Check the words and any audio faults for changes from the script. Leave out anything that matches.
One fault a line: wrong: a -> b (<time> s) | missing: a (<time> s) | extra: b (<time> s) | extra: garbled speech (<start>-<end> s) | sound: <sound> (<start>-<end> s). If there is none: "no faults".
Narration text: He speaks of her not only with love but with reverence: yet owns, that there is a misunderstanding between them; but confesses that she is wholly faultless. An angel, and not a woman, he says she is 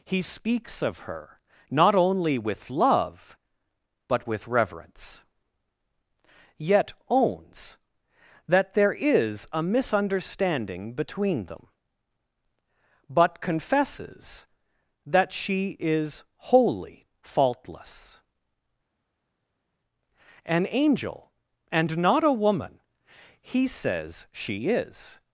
no faults